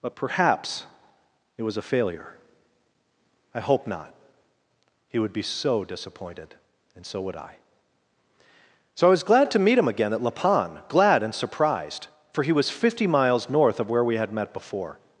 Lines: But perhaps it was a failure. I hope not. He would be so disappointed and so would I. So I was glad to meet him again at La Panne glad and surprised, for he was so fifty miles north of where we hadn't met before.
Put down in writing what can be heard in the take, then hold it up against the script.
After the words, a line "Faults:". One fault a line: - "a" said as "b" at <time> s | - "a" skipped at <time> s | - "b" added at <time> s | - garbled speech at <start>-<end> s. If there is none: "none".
But perhaps it was a failure. I hope not. He would be so disappointed and so would I. So I was glad to meet him again at La Panne glad and surprised, for he was fifty miles north of where we had met before.
Faults:
- "so" skipped at 12.7 s
- "hadn't" said as "had" at 14.2 s